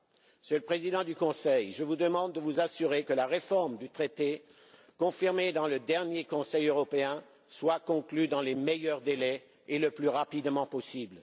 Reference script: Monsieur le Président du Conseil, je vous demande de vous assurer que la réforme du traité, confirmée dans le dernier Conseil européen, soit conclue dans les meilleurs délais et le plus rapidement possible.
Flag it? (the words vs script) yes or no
no